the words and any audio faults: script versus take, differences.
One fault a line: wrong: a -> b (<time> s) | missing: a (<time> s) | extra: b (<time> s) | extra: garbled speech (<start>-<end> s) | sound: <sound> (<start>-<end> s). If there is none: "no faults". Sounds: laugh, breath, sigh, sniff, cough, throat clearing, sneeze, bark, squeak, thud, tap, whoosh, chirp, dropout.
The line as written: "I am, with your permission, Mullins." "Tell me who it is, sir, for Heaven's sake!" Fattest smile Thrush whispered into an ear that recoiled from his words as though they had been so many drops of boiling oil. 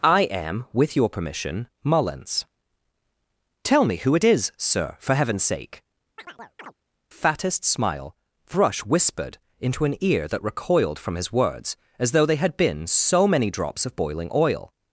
sound: chirp (6.2-6.7 s)